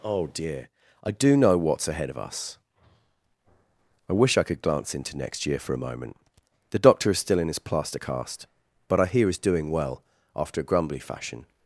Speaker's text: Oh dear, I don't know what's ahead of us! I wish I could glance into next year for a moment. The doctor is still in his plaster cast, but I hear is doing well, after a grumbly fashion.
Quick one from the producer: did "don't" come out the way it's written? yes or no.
no